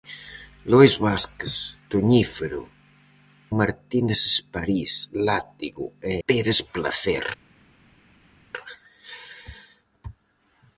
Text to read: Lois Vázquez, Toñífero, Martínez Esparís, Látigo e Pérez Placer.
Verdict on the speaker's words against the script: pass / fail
pass